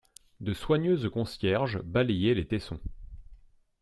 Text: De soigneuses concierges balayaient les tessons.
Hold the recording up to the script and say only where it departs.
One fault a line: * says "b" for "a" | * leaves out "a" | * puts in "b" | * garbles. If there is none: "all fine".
all fine